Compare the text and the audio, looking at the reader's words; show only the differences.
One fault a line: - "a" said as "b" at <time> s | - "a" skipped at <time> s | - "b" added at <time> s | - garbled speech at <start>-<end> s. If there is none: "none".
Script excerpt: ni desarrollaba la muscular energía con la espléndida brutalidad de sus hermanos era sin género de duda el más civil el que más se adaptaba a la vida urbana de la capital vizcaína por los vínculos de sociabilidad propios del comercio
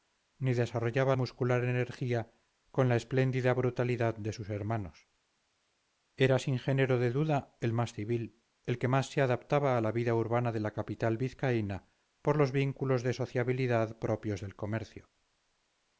- "la" skipped at 1.1 s